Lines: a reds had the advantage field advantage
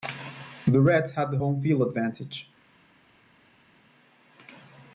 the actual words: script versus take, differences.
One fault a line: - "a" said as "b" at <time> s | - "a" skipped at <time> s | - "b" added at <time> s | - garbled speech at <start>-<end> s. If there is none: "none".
- "a" said as "the" at 0.7 s
- "advantage" said as "home" at 1.4 s